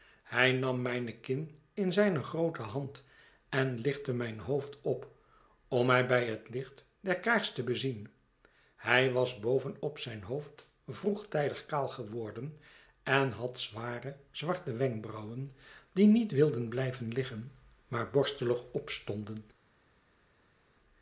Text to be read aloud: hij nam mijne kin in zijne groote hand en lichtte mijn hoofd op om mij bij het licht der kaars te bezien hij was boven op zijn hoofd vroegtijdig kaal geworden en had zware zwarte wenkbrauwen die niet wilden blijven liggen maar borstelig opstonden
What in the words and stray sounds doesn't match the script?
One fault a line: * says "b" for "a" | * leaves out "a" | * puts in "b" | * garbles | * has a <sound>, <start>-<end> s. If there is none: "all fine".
all fine